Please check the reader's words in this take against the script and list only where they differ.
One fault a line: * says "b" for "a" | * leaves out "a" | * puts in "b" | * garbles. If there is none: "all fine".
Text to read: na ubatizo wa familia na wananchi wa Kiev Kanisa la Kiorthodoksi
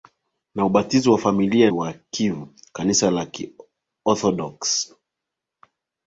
* leaves out "na wananchi"